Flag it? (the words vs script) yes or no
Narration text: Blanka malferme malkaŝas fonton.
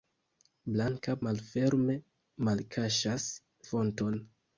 no